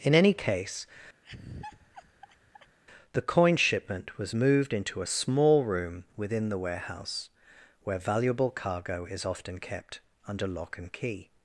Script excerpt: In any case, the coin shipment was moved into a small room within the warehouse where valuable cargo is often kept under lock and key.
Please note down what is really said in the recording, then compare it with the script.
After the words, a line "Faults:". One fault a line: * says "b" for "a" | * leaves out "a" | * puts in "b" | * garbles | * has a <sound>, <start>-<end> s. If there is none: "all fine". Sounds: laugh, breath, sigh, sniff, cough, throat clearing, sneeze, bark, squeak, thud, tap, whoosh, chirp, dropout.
In any case, the coin shipment was moved into a small room within the warehouse where valuable cargo is often kept under lock and key.
Faults:
* has a laugh, 1.2-2.8 s